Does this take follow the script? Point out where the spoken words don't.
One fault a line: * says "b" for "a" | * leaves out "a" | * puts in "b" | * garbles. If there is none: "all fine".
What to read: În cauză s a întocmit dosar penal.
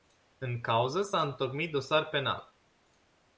all fine